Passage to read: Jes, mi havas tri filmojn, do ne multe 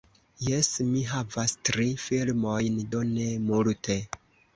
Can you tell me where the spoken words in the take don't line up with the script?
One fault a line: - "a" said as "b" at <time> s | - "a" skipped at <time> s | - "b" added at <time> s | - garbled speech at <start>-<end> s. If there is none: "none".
none